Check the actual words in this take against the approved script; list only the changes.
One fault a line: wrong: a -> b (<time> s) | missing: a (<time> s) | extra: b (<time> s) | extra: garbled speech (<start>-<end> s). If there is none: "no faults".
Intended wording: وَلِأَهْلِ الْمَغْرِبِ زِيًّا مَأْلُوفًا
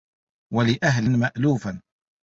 missing: الْمَغْرِبِ زِيًّا (1.1 s)